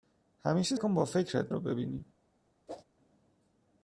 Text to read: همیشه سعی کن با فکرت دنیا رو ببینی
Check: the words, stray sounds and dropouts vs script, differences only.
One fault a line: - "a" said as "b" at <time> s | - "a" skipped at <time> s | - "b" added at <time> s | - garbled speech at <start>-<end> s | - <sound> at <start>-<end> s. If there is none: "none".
- "سعی" skipped at 0.8 s
- "دنیا" skipped at 1.5 s
- whoosh at 2.7-2.8 s